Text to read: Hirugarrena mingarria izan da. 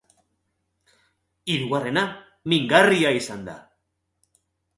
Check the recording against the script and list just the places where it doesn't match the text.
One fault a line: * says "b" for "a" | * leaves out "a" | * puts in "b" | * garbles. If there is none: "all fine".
all fine